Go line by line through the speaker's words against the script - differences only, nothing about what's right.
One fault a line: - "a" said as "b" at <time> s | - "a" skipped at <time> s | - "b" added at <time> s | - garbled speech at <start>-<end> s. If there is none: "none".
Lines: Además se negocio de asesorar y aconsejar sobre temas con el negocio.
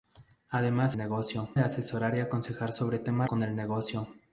none